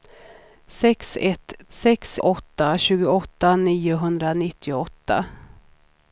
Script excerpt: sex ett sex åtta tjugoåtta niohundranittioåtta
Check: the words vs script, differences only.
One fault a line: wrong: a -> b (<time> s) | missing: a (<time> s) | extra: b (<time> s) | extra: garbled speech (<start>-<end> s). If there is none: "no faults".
no faults